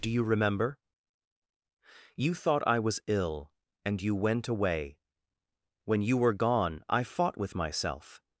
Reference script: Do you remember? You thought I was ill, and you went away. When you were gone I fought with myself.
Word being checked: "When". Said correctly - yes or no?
yes